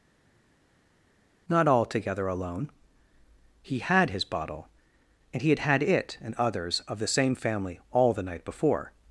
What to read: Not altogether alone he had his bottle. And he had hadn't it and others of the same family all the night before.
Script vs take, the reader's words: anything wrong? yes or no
yes